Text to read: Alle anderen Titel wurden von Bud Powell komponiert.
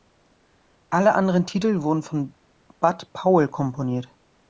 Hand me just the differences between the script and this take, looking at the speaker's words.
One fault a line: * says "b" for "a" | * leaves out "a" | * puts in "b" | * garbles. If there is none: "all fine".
all fine